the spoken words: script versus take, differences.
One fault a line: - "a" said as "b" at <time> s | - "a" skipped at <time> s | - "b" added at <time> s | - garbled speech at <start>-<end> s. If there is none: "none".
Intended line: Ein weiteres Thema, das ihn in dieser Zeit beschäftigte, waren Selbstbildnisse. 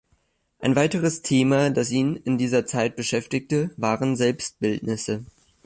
none